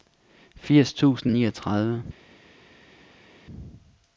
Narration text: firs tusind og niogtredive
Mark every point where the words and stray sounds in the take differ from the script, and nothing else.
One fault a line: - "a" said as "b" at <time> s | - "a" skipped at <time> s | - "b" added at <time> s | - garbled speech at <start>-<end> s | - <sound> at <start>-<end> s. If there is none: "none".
none